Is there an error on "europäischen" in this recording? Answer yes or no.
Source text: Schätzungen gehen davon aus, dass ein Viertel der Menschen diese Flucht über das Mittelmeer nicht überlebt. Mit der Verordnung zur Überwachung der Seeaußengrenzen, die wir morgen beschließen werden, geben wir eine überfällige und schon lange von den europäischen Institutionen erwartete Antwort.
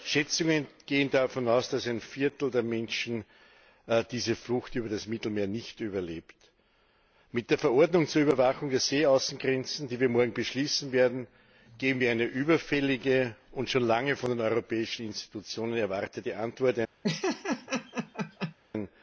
no